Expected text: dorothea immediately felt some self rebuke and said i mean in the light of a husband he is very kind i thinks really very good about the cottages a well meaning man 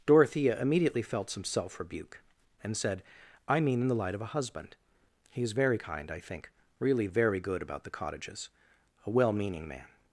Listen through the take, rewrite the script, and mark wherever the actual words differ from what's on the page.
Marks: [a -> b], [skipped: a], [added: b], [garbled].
dorothea immediately felt some self rebuke and said i mean in the light of a husband he is very kind i [thinks -> think] really very good about the cottages a well meaning man